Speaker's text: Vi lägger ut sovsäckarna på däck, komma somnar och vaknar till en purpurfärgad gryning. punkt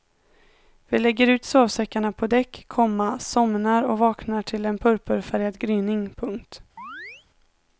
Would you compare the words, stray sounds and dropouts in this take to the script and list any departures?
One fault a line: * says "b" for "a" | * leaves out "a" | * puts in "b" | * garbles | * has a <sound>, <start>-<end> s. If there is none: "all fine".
* has a chirp, 6.8-7.3 s